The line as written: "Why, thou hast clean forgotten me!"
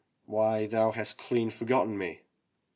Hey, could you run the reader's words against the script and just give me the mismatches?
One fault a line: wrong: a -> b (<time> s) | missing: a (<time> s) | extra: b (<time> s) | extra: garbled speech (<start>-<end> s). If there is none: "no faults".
no faults